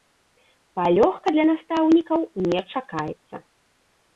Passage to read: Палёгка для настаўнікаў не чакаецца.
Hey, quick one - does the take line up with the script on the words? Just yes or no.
yes